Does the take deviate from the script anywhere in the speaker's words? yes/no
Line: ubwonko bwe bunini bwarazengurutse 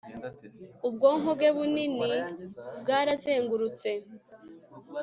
no